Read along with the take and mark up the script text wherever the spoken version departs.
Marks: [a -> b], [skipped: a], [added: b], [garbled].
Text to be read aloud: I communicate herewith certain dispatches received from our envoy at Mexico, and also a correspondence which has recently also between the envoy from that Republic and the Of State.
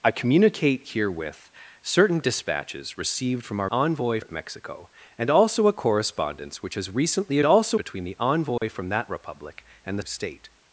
I communicate herewith certain dispatches received from our envoy at Mexico, and also a correspondence which has recently also between the envoy from that Republic and the Of State.